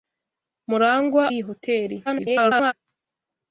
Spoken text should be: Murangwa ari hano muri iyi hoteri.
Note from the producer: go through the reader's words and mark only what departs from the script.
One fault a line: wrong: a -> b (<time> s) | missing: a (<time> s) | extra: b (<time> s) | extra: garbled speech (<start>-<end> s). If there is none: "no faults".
missing: ari hano muri (1.2 s)
extra: garbled speech (2.1-2.7 s)